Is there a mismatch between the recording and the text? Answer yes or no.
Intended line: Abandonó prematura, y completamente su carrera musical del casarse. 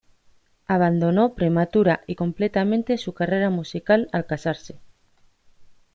yes